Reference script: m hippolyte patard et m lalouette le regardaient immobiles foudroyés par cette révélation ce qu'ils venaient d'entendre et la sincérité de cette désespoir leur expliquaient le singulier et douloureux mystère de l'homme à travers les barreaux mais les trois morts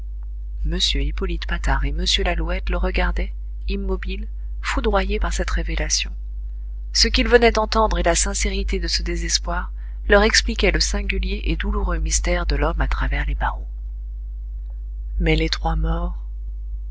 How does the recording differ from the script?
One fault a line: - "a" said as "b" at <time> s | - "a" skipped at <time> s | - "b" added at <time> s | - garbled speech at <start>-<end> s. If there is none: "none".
- "cette" said as "ce" at 8.9 s